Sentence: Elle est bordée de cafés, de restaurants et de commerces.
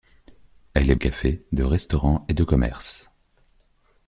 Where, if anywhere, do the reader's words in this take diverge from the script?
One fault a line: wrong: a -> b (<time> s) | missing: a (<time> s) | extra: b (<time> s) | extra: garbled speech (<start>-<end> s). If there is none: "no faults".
missing: bordée de (0.9 s)